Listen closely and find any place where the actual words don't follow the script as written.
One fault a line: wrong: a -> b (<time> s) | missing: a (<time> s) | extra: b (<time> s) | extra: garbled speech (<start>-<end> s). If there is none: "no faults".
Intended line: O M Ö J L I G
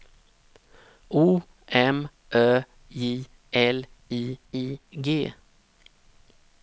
extra: I (4.5 s)